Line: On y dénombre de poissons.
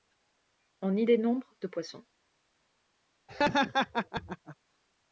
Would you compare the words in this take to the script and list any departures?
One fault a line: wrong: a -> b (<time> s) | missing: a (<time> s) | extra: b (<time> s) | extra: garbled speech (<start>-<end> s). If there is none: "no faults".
no faults